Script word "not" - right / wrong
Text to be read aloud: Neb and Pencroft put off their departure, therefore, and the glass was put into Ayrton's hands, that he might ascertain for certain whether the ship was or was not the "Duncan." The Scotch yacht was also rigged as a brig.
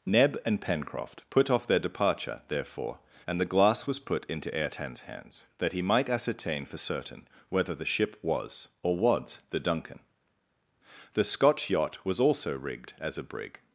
wrong